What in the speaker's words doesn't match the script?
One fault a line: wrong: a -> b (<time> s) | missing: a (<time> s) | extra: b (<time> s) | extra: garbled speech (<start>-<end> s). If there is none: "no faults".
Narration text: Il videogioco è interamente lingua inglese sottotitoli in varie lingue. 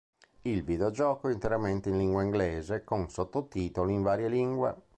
extra: in (1.9 s)
extra: con (2.8 s)